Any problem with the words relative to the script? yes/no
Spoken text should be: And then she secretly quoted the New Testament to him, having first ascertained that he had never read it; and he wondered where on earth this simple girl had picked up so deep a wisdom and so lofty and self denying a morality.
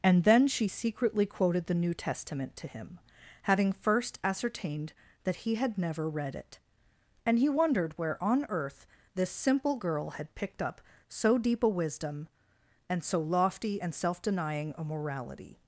no